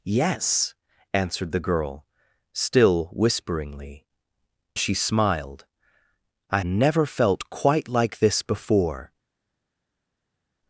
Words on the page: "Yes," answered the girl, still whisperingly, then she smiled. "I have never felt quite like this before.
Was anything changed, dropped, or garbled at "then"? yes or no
yes